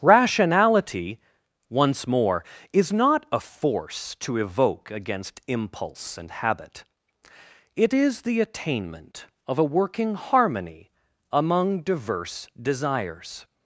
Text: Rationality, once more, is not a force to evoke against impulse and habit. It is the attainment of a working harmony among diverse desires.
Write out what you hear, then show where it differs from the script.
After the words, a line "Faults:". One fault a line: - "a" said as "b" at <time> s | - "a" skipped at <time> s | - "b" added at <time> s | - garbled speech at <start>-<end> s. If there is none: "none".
Rationality, once more, is not a force to evoke against impulse and habit. It is the attainment of a working harmony among diverse desires.
Faults:
none